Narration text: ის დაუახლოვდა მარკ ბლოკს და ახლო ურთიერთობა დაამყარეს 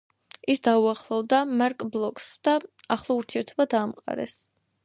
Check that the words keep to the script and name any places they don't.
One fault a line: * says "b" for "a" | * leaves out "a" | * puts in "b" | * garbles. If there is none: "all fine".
all fine